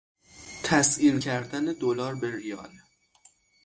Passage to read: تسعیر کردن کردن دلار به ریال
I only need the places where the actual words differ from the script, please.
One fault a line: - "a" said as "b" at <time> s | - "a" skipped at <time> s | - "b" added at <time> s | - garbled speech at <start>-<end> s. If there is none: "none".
- "کردن" skipped at 1.6 s